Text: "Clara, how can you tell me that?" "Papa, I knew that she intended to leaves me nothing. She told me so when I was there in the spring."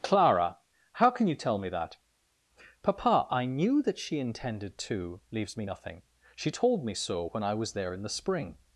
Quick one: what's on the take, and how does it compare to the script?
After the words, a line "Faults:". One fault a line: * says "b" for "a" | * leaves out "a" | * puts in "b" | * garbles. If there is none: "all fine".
"Clara, how can you tell me that?" "Papa, I knew that she intended to leaves me nothing. She told me so when I was there in the spring."
Faults:
all fine